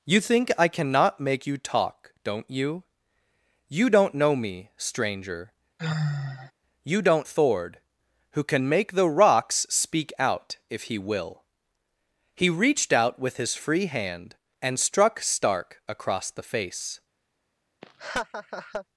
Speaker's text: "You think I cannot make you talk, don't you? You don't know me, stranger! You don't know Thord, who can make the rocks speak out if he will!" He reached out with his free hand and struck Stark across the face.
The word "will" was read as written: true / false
true